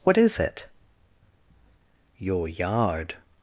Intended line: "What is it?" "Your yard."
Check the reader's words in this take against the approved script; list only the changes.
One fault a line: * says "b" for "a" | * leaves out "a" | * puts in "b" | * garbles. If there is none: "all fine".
all fine